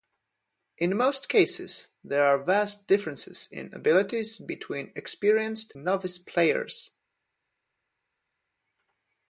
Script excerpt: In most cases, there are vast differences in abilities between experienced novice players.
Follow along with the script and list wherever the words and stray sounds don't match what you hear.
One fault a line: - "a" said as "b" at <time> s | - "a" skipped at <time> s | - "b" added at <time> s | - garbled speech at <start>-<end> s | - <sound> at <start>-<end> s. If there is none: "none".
none